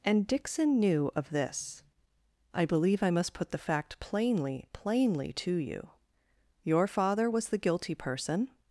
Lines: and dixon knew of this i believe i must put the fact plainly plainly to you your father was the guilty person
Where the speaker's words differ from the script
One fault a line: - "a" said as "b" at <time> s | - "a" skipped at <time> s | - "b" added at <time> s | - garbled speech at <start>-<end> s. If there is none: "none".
none